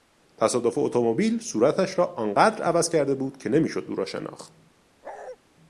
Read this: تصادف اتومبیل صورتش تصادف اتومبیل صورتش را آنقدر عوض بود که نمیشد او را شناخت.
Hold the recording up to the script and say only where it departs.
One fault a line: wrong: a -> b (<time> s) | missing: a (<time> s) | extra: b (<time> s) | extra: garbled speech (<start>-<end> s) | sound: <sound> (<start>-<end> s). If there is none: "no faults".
missing: تصادف اتومبیل صورتش (2.0 s)
extra: کرده (2.9 s)
sound: bark (5.0-5.4 s)